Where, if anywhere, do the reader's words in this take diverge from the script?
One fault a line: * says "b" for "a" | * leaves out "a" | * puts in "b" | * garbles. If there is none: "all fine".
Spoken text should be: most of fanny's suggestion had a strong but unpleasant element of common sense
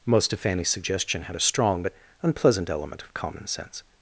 all fine